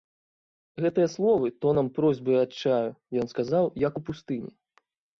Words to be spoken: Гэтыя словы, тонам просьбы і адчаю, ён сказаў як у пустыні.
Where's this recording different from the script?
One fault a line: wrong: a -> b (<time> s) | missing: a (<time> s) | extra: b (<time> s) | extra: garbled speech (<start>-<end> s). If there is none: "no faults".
no faults